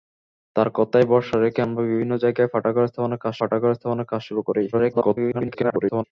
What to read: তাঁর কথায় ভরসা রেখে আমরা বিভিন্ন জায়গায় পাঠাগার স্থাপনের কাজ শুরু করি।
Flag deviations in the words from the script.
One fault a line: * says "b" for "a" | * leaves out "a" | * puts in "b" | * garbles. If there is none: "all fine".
* puts in "পাঠাগার স্থাপনের কাজ"
* garbles